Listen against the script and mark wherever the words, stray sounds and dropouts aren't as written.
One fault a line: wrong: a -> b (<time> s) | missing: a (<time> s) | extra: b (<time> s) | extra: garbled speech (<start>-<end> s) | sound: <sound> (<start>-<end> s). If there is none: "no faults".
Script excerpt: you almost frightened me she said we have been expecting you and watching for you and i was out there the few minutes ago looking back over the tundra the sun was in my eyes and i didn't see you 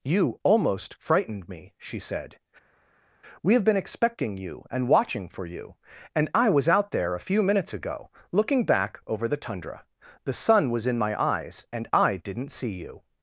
wrong: the -> a (7.1 s)